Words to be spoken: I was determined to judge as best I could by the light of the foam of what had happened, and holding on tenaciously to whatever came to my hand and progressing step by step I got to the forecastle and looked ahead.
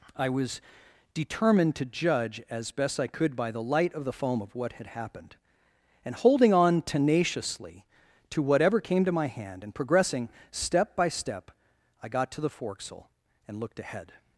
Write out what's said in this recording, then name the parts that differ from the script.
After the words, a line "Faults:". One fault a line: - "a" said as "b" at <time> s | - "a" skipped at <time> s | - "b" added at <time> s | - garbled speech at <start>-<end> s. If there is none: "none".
I was determined to judge as best I could by the light of the foam of what had happened, and holding on tenaciously to whatever came to my hand and progressing step by step I got to the forecastle and looked ahead.
Faults:
none